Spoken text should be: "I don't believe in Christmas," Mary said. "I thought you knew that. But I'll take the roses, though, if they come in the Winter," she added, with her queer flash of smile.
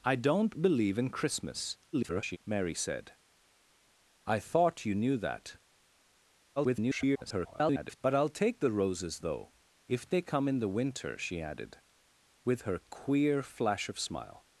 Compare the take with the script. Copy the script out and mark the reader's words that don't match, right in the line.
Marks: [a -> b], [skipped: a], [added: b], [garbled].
"I don't believe in Christmas," [garbled] Mary said. "I thought you knew that. [garbled] But I'll take the roses, though, if they come in the Winter," she added, with her queer flash of smile.